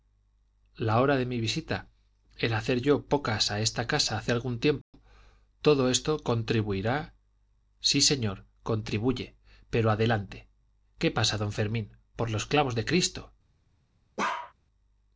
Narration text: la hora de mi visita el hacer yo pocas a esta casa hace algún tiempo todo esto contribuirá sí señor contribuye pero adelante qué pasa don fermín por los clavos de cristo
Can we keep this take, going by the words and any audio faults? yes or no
no